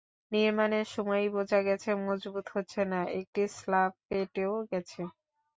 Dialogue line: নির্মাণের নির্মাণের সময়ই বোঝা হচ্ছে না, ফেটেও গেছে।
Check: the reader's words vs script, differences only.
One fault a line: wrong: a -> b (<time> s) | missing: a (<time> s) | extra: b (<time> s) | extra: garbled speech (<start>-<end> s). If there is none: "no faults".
missing: নির্মাণের (0.9 s)
extra: গেছে মজবুত (1.7 s)
extra: একটি স্ল্যাব (3.2 s)